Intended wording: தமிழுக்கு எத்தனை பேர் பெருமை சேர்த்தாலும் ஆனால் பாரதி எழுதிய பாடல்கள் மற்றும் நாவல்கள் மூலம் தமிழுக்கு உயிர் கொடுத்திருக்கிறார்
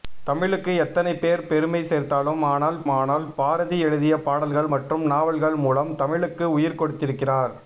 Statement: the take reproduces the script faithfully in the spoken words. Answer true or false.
false